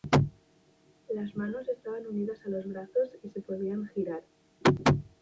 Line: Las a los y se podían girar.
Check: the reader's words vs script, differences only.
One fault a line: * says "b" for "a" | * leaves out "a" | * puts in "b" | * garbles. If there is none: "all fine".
* puts in "manos estaban unidas"
* puts in "brazos"